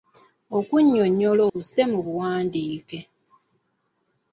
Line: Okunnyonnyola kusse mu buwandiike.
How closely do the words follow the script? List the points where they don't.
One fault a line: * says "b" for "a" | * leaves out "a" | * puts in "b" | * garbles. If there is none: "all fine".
all fine